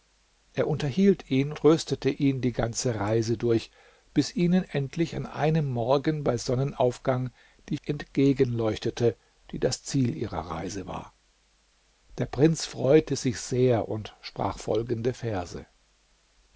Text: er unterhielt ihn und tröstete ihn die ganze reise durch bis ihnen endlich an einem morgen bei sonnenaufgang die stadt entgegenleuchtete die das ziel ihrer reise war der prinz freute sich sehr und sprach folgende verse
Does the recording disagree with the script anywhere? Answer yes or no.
yes